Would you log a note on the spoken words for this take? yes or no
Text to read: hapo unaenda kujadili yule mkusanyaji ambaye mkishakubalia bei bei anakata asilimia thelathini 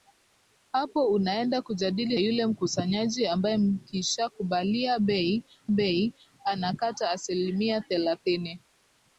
no